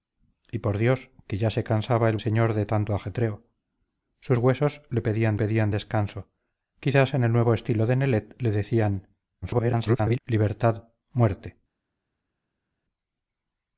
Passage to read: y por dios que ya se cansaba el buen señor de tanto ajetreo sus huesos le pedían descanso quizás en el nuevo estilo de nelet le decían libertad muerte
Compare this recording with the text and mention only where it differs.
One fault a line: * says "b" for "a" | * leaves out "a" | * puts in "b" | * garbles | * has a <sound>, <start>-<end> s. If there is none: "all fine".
* leaves out "buen"
* puts in "pedían"
* garbles